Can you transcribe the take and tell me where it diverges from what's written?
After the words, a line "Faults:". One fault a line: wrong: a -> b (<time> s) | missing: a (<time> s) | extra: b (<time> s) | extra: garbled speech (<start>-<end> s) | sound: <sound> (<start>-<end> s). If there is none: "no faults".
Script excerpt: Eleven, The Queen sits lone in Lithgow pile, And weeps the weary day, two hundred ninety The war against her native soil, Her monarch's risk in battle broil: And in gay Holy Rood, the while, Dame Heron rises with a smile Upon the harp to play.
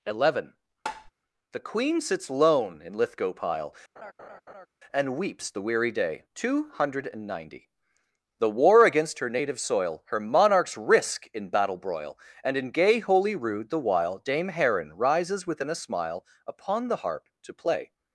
Eleven, The Queen sits lone in Lithgow pile, And weeps the weary day, two hundred ninety The war against her native soil, Her monarch's risk in battle broil: And in gay Holy Rood, the while, Dame Heron rises within a smile Upon the harp to play.
Faults:
sound: tap (0.9-1.1 s)
sound: laugh (4.0-4.7 s)
wrong: with -> within (15.5 s)